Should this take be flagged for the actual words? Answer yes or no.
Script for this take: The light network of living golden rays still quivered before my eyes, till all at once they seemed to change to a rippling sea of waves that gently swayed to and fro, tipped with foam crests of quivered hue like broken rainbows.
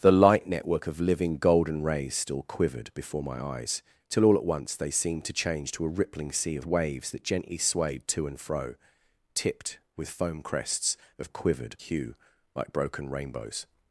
no